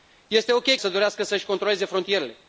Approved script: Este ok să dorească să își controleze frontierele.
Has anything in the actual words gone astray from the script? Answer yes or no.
no